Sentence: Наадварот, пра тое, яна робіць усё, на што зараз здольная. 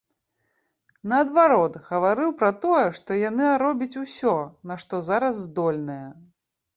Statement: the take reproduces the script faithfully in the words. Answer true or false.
false